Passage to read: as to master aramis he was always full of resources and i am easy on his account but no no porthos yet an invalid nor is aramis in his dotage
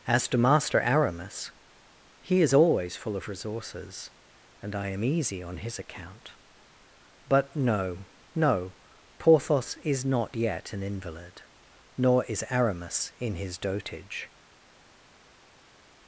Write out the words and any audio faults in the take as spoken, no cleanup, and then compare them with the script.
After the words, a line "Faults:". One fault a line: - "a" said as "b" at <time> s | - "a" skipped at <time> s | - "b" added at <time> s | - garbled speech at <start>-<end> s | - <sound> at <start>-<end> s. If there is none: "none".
as to master aramis he is always full of resources and i am easy on his account but no no porthos is not yet an invalid nor is aramis in his dotage
Faults:
- "was" said as "is" at 2.4 s
- "is not" added at 9.8 s